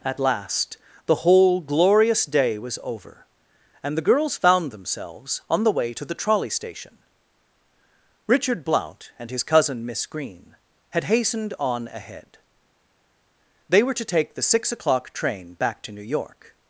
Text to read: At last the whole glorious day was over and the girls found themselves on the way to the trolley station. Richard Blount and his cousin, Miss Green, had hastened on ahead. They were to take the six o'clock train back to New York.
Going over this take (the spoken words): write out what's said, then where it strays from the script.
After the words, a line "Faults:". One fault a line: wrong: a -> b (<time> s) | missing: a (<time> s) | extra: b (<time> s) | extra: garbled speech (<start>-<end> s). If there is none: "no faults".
At last the whole glorious day was over and the girls found themselves on the way to the trolley station. Richard Blount and his cousin, Miss Green, had hastened on ahead. They were to take the six o'clock train back to New York.
Faults:
no faults